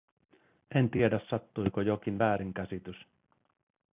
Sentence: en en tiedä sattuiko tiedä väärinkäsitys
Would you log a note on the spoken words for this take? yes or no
yes